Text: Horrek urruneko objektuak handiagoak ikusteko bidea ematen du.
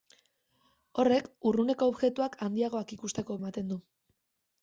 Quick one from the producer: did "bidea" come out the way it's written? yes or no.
no